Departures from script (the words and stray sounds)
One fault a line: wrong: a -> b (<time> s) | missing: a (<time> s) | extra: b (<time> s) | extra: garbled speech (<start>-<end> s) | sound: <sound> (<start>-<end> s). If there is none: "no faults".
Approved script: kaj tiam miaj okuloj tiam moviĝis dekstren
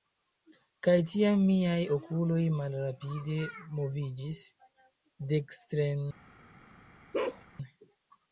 wrong: tiam -> malrapide (2.6 s)
sound: bark (7.1-7.4 s)